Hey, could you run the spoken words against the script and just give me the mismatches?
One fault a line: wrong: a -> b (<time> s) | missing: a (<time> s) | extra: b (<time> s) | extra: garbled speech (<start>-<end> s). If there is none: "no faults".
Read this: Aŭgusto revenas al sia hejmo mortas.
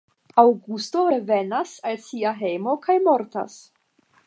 extra: kaj (2.9 s)